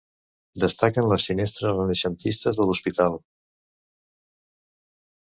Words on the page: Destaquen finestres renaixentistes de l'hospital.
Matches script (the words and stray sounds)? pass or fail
fail